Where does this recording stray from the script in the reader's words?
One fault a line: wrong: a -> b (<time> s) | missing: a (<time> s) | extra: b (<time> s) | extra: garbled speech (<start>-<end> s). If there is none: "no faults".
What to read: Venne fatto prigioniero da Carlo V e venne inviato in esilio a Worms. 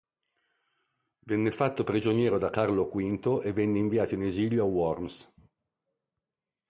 no faults